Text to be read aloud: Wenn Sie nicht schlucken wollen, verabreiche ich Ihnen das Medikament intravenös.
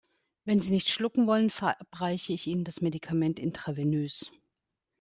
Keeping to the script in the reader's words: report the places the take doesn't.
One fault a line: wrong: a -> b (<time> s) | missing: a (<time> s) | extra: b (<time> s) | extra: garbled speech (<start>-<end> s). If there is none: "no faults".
no faults